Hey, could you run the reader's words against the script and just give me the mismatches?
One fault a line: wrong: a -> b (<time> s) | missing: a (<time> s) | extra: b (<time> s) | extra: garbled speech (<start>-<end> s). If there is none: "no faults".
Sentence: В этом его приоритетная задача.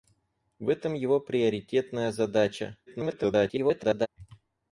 extra: garbled speech (2.9-4.1 s)